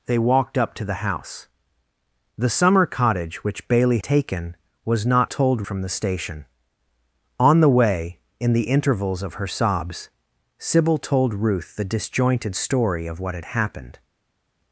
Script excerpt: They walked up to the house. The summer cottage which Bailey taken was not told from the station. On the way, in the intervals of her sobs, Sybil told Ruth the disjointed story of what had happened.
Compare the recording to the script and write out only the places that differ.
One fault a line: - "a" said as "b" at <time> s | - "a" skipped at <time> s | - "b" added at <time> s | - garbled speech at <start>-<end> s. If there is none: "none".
none